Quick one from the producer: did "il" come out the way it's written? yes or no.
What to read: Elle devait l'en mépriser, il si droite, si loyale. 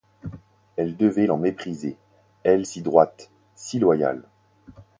no